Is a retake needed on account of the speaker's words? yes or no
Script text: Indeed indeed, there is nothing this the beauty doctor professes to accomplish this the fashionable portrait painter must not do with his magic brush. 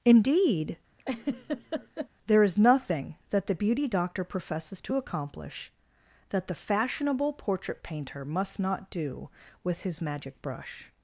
yes